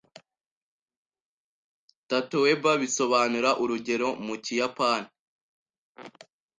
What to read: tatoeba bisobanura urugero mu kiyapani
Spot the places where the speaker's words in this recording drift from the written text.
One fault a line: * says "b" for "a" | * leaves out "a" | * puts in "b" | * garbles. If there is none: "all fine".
all fine